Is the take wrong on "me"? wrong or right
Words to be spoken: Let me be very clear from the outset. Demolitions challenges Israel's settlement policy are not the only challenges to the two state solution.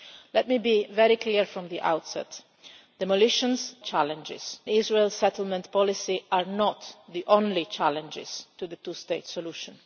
right